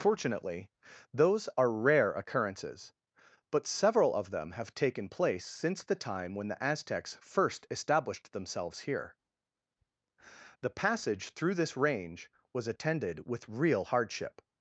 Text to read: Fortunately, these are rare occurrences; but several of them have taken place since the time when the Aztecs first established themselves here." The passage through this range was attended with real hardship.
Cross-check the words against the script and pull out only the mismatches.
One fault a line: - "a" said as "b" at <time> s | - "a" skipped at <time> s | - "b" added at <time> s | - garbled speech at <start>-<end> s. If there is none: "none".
- "these" said as "those" at 1.1 s